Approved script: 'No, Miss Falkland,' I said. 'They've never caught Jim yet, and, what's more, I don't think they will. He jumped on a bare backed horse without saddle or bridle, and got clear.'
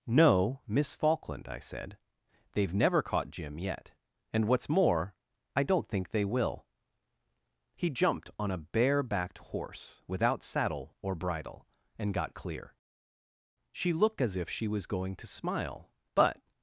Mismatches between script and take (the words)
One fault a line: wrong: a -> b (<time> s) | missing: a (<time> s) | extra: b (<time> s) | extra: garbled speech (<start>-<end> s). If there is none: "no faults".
extra: She looked as if she was going to smile but (13.7 s)